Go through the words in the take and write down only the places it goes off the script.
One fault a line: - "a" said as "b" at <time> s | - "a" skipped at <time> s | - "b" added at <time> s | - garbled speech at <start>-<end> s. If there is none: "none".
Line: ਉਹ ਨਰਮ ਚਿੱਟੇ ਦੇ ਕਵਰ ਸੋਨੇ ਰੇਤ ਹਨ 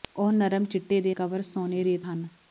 none